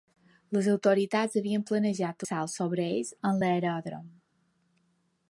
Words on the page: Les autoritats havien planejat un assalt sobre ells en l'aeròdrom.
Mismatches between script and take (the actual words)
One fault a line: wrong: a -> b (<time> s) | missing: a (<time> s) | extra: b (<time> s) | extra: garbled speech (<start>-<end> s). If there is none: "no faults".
missing: un (2.2 s)